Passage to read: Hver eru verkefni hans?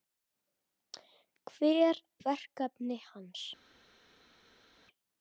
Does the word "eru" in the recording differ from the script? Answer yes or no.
yes